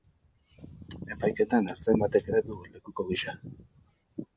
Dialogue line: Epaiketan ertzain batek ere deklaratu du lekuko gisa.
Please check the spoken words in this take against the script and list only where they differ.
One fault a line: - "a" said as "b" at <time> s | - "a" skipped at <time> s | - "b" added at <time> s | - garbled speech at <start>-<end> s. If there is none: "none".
- "deklaratu" skipped at 2.4 s